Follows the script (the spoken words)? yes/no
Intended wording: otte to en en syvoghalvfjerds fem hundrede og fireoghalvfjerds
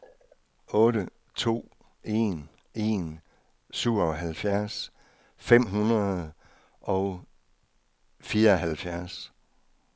yes